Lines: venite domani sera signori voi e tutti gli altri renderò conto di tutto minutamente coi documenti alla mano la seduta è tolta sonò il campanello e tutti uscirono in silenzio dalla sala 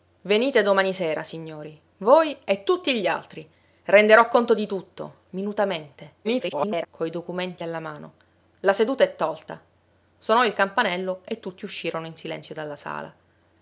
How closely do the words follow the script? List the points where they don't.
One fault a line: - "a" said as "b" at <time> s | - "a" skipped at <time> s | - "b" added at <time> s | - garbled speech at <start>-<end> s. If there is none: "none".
- garbled speech at 6.2-6.9 s